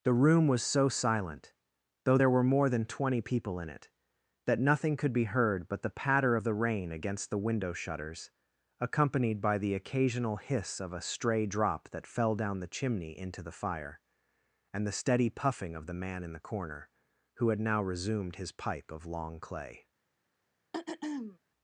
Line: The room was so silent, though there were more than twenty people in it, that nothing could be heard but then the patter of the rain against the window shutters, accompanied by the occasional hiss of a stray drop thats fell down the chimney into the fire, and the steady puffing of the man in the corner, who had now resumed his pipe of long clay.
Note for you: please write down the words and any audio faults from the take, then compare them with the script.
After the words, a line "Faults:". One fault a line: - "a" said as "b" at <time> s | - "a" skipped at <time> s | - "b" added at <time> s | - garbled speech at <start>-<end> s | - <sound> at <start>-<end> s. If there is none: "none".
The room was so silent, though there were more than twenty people in it, that nothing could be heard but the patter of the rain against the window shutters, accompanied by the occasional hiss of a stray drop that fell down the chimney into the fire, and the steady puffing of the man in the corner, who had now resumed his pipe of long clay.
Faults:
- "then" skipped at 5.8 s
- "thats" said as "that" at 11.9 s
- throat clearing at 20.7-21.4 s